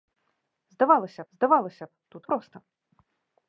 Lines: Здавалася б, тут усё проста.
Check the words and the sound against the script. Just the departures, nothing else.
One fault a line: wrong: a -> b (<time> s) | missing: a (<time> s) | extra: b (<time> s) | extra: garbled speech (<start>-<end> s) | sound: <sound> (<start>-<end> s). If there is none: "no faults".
extra: здавалася (1.3 s)
missing: усё (2.2 s)